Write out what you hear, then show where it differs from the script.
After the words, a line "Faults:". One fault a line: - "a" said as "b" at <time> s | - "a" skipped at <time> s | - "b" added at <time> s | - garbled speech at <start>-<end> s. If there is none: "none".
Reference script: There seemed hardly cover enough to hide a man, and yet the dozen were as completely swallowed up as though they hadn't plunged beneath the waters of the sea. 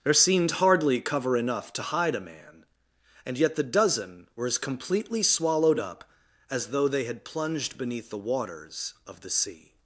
There seemed hardly cover enough to hide a man, and yet the dozen were as completely swallowed up as though they had plunged beneath the waters of the sea.
Faults:
- "hadn't" said as "had" at 7.0 s